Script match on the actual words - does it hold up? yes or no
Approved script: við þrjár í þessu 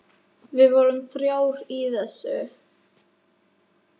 no